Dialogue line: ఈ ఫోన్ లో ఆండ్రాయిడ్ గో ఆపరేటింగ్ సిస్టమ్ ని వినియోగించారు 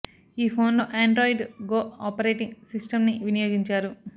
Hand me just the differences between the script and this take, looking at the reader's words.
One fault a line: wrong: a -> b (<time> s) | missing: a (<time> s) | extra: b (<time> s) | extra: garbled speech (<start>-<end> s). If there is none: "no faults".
no faults